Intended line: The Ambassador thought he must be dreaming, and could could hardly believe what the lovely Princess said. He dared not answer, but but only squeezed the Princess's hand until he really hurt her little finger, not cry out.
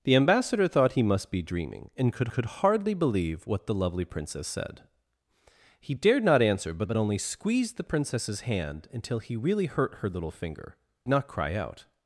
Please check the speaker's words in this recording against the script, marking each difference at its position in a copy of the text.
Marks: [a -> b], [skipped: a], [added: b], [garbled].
The Ambassador thought he must be dreaming, and could could hardly believe what the lovely Princess said. He dared not answer, but but only squeezed the Princess's hand until he really hurt her little finger, not cry out.